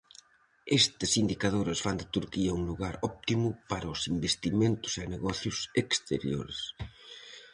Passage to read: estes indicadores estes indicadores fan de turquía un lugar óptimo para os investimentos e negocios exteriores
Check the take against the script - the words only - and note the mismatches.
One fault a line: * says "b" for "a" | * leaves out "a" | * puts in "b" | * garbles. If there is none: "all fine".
* leaves out "estes indicadores"